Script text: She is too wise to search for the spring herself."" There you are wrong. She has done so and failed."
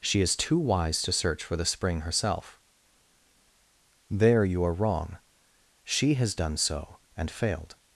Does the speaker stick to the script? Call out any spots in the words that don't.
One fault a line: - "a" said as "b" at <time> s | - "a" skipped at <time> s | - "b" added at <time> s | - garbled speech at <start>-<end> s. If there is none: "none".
none